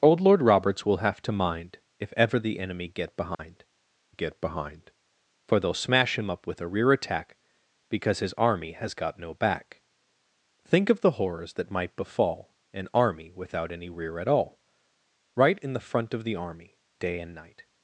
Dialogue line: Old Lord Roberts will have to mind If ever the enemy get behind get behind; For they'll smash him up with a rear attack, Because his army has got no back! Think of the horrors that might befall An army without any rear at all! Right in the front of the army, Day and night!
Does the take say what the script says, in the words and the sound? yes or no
no